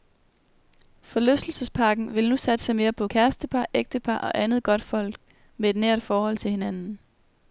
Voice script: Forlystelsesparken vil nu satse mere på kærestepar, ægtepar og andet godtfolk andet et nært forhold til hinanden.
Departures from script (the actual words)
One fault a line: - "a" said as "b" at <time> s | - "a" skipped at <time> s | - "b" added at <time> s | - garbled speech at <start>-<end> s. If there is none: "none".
- "andet" said as "med" at 5.6 s